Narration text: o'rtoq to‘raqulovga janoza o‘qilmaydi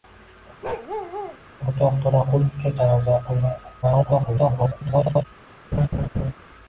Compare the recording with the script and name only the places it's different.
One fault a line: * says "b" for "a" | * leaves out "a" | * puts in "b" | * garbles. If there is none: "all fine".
* garbles